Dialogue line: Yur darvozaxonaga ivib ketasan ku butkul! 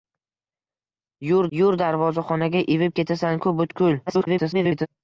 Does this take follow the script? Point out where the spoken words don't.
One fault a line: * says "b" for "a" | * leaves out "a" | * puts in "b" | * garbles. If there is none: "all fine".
* puts in "yur"
* garbles